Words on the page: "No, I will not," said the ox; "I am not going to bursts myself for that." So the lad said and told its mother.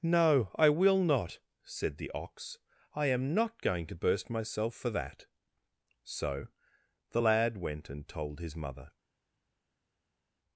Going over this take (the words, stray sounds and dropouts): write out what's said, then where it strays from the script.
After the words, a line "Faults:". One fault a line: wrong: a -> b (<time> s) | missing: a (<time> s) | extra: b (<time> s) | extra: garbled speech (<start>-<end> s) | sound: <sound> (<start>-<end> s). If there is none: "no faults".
"No, I will not," said the ox; "I am not going to burst myself for that." So the lad went and told his mother.
Faults:
wrong: bursts -> burst (4.0 s)
wrong: said -> went (7.6 s)
wrong: its -> his (8.4 s)